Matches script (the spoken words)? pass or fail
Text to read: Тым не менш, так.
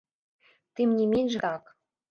pass